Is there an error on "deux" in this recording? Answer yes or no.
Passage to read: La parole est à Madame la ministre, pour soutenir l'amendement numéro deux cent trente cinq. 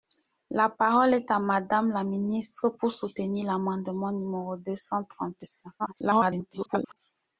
no